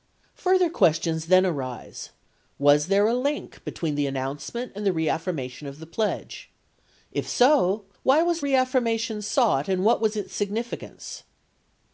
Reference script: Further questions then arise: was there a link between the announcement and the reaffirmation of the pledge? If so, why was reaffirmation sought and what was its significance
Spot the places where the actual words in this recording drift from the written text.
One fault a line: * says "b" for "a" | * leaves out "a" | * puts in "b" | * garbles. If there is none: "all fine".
all fine